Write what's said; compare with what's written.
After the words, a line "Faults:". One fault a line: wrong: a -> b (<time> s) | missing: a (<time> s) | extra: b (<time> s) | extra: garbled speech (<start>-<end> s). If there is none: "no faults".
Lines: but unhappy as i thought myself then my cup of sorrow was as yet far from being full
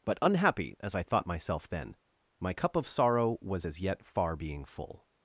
but unhappy as i thought myself then my cup of sorrow was as yet far being full
Faults:
missing: from (4.4 s)